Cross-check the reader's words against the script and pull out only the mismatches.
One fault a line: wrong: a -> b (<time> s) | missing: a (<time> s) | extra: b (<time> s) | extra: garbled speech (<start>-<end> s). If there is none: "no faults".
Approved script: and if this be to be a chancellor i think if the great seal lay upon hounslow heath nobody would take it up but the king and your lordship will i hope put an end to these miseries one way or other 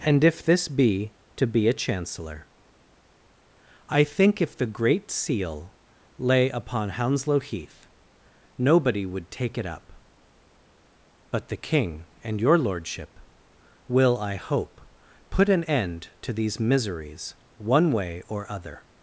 no faults